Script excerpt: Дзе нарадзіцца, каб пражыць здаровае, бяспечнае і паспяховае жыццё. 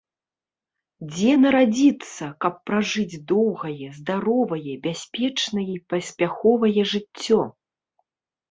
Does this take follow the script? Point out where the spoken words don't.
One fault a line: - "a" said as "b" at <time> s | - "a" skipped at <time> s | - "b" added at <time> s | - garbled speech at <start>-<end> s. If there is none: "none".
- "доўгае" added at 3.3 s